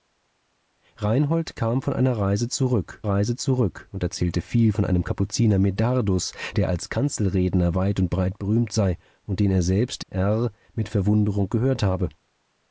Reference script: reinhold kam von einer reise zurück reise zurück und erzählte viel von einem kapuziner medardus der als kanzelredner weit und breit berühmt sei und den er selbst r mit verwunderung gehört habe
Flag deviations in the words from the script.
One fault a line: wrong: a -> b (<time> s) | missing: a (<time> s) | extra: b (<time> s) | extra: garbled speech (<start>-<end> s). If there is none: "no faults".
no faults